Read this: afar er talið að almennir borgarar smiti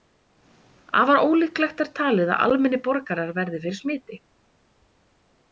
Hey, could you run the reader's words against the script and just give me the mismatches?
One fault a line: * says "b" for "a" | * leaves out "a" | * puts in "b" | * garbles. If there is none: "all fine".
* puts in "ólíklegt"
* puts in "verði fyrir"